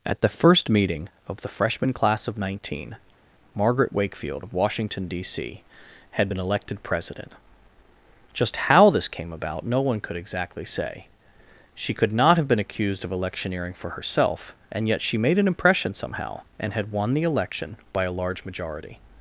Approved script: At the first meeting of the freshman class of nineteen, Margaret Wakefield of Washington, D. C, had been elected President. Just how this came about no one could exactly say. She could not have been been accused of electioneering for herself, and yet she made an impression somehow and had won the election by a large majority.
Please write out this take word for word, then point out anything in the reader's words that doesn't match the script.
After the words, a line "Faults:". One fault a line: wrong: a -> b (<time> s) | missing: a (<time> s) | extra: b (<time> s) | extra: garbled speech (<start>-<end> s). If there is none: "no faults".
At the first meeting of the freshman class of nineteen, Margaret Wakefield of Washington, D. C, had been elected President. Just how this came about no one could exactly say. She could not have been accused of electioneering for herself, and yet she made an impression somehow and had won the election by a large majority.
Faults:
missing: been (12.6 s)